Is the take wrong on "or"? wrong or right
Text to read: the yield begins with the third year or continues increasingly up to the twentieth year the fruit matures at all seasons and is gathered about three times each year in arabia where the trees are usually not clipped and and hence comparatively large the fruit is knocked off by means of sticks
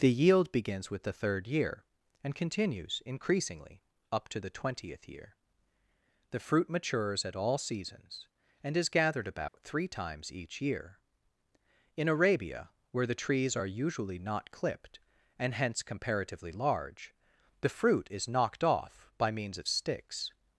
wrong